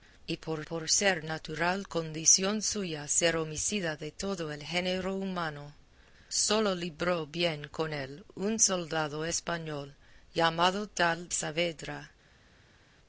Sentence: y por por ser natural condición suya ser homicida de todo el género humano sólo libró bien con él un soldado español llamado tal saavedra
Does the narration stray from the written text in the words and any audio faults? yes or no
no